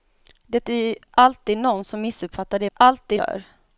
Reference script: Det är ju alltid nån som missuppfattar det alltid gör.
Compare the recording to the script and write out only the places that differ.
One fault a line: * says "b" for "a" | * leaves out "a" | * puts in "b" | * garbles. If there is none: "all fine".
all fine